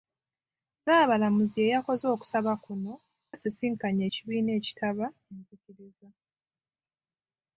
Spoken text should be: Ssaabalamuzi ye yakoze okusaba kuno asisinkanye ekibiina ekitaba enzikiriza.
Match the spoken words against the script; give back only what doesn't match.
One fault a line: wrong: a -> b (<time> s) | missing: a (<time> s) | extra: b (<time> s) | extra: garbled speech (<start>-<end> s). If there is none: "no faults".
no faults